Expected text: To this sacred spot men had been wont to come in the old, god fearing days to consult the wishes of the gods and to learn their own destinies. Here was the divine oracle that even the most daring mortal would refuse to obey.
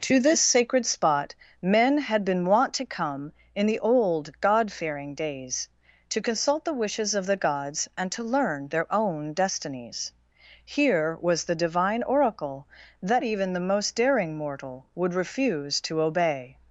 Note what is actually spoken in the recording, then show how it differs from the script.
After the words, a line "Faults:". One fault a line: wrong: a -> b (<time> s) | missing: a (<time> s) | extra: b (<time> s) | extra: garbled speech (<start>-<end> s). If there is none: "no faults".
To this sacred spot men had been wont to come in the old, god fearing days to consult the wishes of the gods and to learn their own destinies. Here was the divine oracle that even the most daring mortal would refuse to obey.
Faults:
no faults